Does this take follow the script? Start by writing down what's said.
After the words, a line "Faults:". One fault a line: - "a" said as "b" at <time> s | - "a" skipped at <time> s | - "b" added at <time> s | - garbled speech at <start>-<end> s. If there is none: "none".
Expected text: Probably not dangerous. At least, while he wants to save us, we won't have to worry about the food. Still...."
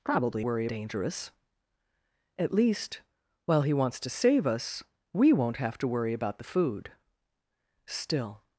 Probably worry dangerous. At least, while he wants to save us, we won't have to worry about the food. Still...."
Faults:
- "not" said as "worry" at 0.4 s